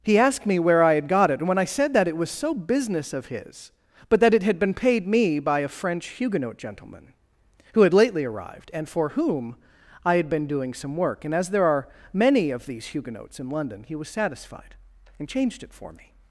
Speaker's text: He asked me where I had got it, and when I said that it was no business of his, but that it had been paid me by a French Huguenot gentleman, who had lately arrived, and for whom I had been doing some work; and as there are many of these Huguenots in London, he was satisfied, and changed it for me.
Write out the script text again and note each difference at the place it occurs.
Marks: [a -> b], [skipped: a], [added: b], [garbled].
He asked me where I had got it, and when I said that it was [no -> so] business of his, but that it had been paid me by a French Huguenot gentleman, who had lately arrived, and for whom I had been doing some work; and as there are many of these Huguenots in London, he was satisfied, and changed it for me.